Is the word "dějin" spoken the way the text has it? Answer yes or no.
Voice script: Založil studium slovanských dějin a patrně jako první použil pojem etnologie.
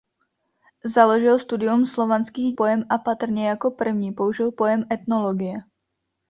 no